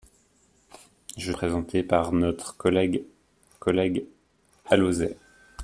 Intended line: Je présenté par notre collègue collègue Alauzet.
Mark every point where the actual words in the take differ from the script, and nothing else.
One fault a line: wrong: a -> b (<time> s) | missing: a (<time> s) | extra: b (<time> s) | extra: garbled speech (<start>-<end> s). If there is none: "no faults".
no faults